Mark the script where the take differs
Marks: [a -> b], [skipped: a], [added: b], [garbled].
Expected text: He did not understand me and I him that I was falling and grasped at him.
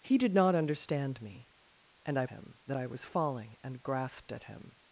He did not understand me and I him that I was falling and grasped at him.